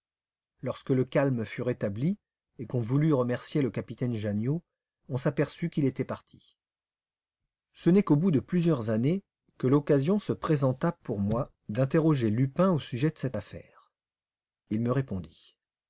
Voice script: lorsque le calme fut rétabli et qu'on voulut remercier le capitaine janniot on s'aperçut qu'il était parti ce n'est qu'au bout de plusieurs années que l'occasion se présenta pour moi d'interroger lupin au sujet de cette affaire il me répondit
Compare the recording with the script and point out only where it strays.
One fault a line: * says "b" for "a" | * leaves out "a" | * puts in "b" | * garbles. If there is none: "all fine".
all fine